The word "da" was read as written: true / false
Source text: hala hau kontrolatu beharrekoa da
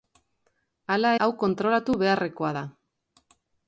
true